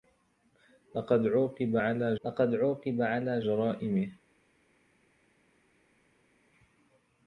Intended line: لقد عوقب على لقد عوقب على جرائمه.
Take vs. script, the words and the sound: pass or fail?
pass